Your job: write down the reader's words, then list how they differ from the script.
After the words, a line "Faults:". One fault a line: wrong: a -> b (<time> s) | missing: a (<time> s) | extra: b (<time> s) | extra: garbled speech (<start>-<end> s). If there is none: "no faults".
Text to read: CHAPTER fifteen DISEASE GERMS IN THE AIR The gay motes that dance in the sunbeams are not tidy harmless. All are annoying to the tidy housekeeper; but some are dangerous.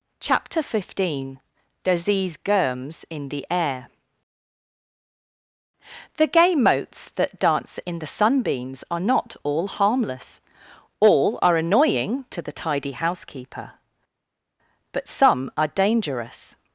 CHAPTER fifteen DISEASE GERMS IN THE AIR The gay motes that dance in the sunbeams are not all harmless. All are annoying to the tidy housekeeper; but some are dangerous.
Faults:
wrong: tidy -> all (9.4 s)